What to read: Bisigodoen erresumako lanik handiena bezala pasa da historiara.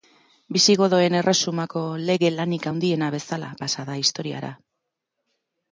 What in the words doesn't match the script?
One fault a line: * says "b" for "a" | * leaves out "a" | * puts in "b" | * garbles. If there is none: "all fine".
* puts in "lege"